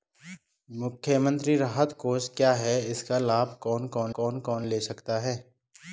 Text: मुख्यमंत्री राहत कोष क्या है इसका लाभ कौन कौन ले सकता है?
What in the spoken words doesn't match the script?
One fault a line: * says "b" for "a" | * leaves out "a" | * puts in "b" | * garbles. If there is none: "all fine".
* puts in "कौन कौन"